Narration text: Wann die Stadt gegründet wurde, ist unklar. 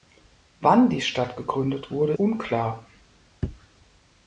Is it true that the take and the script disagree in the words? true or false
true